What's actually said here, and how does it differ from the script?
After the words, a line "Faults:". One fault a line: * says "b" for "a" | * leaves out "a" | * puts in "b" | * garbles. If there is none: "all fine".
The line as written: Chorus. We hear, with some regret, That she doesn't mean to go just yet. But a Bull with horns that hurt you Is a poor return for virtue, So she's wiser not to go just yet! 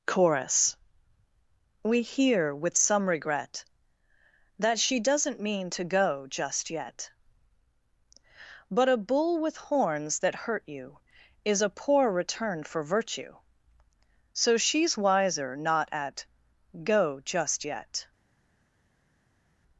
Chorus. We hear, with some regret, That she doesn't mean to go just yet. But a Bull with horns that hurt you Is a poor return for virtue, So she's wiser not at go just yet!
Faults:
* says "at" for "to"